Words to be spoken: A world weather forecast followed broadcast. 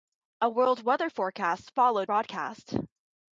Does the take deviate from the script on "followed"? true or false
false